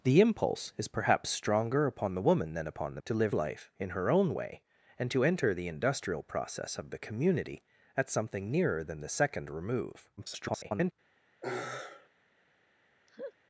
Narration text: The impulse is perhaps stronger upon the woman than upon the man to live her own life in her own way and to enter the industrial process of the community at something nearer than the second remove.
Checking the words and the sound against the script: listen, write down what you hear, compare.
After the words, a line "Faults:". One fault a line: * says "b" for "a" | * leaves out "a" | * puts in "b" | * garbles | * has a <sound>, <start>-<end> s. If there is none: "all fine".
The impulse is perhaps stronger upon the woman than upon the to live life in her own way and to enter the industrial process of the community at something nearer than the second remove. [garbled]
Faults:
* leaves out "man"
* leaves out "her own"
* garbles
* has a sigh, 11.4-12.1 s
* has a laugh, 13.1-13.3 s